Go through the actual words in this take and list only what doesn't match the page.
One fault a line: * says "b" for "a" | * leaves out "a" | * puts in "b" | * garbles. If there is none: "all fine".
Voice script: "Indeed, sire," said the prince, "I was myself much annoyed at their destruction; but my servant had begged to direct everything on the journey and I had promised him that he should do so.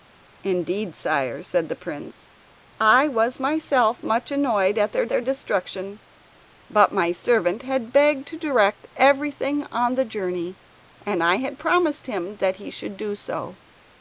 * puts in "their"